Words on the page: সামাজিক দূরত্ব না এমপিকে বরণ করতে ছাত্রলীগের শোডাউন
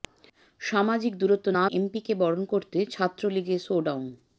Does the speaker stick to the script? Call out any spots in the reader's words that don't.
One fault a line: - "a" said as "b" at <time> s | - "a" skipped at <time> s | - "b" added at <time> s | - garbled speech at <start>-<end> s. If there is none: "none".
none